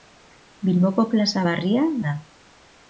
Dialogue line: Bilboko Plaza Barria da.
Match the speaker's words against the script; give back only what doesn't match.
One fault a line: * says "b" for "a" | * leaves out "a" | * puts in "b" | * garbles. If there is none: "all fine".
all fine